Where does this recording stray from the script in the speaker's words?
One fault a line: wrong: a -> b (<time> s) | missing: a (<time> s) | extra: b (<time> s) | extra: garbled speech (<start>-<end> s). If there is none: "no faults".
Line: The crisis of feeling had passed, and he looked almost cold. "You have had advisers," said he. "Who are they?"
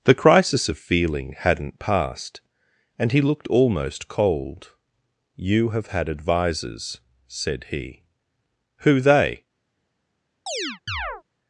wrong: had -> hadn't (1.4 s)
missing: are (9.0 s)